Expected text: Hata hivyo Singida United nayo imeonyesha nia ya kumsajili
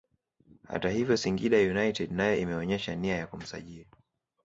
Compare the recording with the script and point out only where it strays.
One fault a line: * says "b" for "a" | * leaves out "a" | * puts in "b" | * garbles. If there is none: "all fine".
all fine